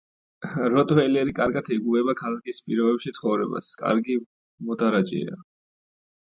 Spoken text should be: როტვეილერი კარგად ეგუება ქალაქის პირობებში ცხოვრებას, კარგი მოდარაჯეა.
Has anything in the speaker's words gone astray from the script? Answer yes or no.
no